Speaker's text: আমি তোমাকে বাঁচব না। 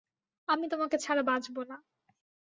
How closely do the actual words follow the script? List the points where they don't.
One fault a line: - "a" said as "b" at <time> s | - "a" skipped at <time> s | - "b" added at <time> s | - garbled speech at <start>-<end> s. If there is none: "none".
- "ছাড়া" added at 1.0 s